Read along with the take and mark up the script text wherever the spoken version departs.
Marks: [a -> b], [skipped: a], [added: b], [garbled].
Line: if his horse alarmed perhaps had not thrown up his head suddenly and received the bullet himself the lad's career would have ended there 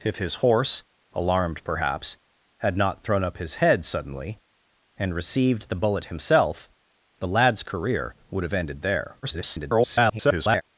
if his horse alarmed perhaps had not thrown up his head suddenly and received the bullet himself the lad's career would have ended there [garbled]